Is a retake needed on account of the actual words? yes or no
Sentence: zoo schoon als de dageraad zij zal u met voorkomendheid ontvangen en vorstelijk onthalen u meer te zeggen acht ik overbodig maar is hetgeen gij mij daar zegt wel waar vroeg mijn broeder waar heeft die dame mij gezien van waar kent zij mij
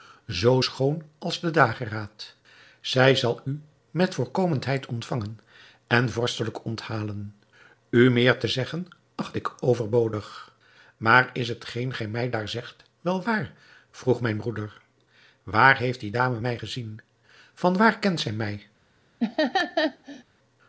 no